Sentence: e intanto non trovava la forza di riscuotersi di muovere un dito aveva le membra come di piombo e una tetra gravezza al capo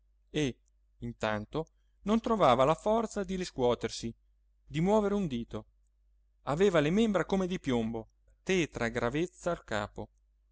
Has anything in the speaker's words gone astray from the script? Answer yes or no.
yes